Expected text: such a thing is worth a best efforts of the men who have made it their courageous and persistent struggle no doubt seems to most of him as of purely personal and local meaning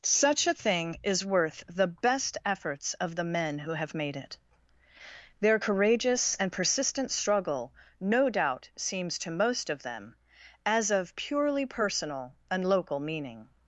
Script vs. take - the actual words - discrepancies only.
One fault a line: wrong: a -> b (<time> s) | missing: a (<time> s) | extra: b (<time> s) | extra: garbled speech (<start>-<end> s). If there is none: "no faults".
wrong: a -> the (1.7 s)
wrong: him -> them (9.8 s)